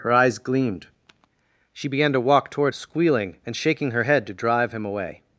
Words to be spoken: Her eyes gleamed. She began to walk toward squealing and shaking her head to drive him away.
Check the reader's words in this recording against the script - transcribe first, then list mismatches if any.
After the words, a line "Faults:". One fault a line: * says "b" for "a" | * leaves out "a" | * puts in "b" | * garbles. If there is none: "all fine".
Her eyes gleamed. She began to walk toward squealing and shaking her head to drive him away.
Faults:
all fine